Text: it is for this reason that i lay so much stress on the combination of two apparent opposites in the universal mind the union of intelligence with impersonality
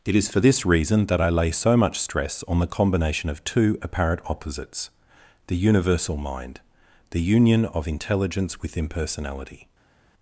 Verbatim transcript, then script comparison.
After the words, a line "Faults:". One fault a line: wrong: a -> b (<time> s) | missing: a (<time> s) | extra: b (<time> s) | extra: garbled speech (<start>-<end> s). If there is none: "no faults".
it is for this reason that i lay so much stress on the combination of two apparent opposites the universal mind the union of intelligence with impersonality
Faults:
missing: in (4.9 s)